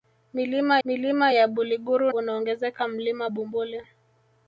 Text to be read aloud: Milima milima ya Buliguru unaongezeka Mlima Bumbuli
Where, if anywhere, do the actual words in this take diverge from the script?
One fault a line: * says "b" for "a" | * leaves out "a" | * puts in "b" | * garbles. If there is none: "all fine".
all fine